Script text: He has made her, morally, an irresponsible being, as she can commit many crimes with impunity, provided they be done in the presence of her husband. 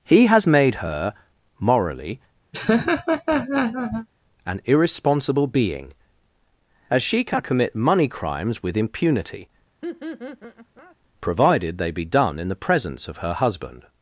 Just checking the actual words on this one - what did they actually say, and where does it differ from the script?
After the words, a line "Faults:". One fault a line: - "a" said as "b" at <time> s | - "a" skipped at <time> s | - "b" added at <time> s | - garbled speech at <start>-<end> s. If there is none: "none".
He has made her, morally, an irresponsible being, as she can commit money crimes with impunity, provided they be done in the presence of her husband.
Faults:
- "many" said as "money" at 7.7 s